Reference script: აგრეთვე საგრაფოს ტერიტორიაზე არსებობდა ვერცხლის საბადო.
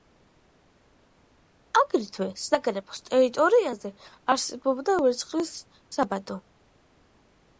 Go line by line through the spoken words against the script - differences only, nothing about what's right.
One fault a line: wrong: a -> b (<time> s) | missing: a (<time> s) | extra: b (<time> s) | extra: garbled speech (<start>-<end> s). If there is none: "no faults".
no faults